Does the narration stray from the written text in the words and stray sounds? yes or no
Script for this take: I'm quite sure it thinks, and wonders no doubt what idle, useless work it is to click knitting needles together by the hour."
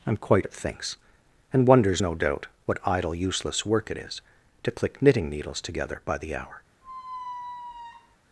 yes